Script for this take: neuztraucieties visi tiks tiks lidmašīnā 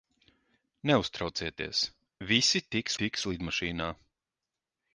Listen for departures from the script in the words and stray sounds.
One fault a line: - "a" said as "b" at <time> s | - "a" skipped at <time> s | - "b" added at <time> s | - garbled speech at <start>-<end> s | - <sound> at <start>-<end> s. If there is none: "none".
none